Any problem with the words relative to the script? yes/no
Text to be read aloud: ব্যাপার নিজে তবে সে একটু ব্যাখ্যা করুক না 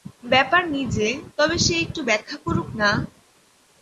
no